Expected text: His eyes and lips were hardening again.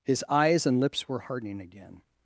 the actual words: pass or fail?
pass